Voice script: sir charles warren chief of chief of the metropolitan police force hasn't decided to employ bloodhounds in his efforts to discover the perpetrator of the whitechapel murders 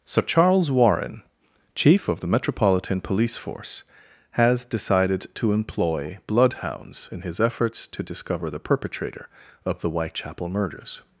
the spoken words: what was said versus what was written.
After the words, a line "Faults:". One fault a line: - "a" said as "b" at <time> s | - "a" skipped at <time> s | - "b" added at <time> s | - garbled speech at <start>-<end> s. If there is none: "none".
sir charles warren chief of the metropolitan police force has decided to employ bloodhounds in his efforts to discover the perpetrator of the whitechapel murders
Faults:
- "chief of" skipped at 2.2 s
- "hasn't" said as "has" at 4.3 s